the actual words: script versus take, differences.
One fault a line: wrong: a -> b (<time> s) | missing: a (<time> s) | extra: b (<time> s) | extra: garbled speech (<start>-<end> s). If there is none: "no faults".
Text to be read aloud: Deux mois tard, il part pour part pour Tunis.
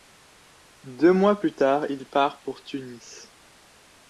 extra: plus (1.4 s)
missing: part pour (2.6 s)